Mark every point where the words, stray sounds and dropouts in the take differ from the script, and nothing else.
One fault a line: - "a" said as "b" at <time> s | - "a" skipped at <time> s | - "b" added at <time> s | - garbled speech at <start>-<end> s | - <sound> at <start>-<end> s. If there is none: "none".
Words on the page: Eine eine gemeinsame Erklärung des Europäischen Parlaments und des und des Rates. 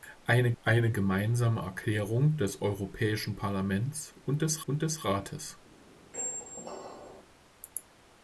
- squeak at 6.1-7.2 s